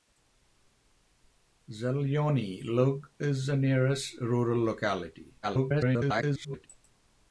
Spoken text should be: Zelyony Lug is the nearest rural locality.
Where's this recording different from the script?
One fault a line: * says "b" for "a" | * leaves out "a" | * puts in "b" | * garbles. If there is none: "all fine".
* garbles